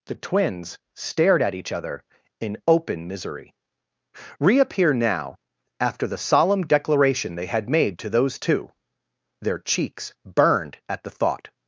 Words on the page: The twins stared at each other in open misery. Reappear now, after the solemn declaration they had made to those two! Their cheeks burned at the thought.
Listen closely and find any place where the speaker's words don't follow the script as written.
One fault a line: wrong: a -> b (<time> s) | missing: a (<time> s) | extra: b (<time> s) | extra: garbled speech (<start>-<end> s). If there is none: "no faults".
no faults